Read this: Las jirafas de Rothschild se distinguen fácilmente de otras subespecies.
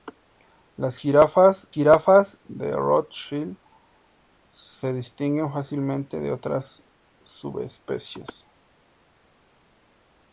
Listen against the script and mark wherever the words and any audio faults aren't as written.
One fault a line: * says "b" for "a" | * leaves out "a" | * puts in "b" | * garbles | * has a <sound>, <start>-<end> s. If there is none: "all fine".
* puts in "jirafas"